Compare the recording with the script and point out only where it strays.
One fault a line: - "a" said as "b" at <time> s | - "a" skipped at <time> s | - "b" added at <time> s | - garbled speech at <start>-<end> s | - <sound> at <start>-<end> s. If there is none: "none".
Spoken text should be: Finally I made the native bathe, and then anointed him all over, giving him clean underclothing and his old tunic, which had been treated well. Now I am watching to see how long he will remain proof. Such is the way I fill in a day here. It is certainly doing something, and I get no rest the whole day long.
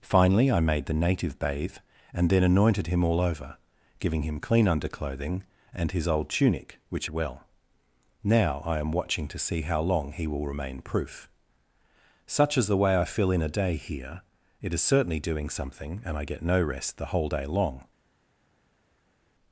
- "had been treated" skipped at 7.1 s